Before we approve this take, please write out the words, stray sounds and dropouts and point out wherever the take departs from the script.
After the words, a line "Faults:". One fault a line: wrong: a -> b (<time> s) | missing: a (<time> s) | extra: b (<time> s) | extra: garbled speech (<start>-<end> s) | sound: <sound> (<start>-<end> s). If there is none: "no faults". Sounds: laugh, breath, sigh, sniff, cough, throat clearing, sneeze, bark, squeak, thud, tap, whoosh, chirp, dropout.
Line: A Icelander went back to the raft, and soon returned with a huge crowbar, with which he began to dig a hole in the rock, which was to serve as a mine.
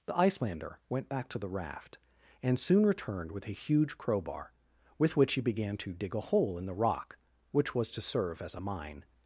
The Icelander went back to the raft, and soon returned with a huge crowbar, with which he began to dig a hole in the rock, which was to serve as a mine.
Faults:
wrong: A -> The (0.1 s)